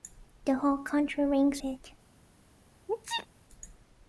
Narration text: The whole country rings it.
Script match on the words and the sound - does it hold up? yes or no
no